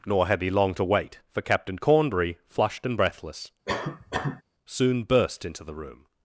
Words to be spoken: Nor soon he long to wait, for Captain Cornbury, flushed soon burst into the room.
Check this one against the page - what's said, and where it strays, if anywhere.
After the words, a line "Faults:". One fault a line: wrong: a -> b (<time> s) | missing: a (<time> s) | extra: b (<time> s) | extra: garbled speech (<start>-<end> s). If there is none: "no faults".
Nor had he long to wait, for Captain Cornbury, flushed and breathless, soon burst into the room.
Faults:
wrong: soon -> had (0.3 s)
extra: and breathless (2.9 s)